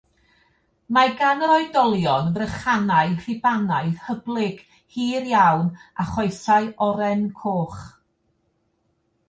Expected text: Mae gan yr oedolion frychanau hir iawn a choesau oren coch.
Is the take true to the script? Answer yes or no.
no